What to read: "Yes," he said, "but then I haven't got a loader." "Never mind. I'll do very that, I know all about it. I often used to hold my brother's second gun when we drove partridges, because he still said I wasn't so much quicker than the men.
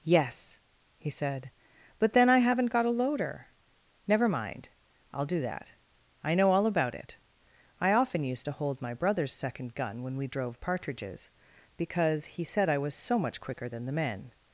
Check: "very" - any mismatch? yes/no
yes